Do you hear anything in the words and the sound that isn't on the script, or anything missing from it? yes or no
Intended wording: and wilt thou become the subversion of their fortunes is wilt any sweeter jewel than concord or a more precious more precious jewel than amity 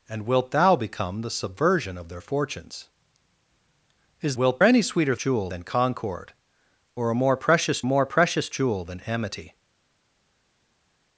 no